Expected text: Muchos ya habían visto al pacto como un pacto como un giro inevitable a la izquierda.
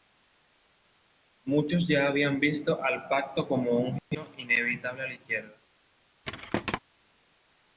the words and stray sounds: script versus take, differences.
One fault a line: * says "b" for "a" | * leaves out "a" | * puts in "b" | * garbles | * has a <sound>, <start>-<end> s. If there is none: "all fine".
* leaves out "pacto como un"
* has a thud, 6.2-6.8 s